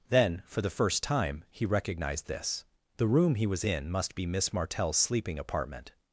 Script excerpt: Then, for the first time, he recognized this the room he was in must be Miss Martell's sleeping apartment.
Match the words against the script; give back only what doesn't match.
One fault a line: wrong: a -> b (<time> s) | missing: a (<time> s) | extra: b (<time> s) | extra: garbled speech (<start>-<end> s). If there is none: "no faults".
no faults